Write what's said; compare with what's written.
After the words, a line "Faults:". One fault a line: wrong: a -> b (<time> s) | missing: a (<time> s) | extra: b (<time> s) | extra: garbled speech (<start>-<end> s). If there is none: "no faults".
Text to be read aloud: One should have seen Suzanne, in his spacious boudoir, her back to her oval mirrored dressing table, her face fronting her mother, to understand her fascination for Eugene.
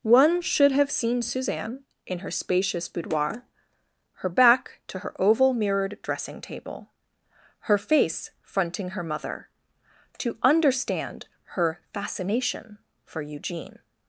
One should have seen Suzanne, in her spacious boudoir, her back to her oval mirrored dressing table, her face fronting her mother, to understand her fascination for Eugene.
Faults:
wrong: his -> her (2.2 s)